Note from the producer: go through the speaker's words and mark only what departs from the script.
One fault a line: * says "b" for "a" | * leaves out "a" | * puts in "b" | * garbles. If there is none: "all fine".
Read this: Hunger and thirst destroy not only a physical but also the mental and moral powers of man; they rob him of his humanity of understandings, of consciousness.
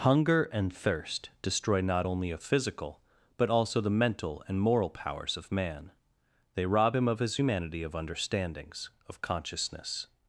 all fine